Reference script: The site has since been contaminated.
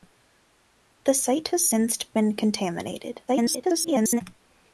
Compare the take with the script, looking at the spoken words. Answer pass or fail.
fail